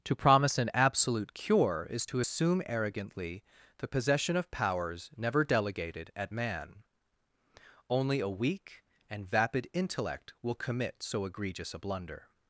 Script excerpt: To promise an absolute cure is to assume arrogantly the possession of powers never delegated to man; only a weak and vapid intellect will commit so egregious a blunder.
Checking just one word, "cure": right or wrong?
right